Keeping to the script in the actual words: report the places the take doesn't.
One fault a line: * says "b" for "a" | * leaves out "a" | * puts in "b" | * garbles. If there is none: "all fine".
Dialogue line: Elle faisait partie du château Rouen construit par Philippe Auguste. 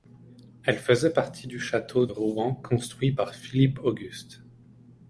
all fine